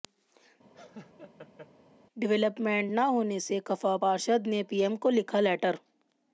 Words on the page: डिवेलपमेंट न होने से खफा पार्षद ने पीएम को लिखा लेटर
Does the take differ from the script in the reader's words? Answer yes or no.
no